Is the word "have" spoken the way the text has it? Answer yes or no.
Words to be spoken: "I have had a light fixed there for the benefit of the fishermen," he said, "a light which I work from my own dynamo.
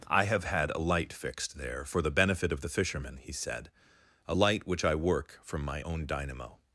yes